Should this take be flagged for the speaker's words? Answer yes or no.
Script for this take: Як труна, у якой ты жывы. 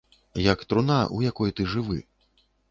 no